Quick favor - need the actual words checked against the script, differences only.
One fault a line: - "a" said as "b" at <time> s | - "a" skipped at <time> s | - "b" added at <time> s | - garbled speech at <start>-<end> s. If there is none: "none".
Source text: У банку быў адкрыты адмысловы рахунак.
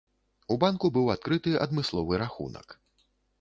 none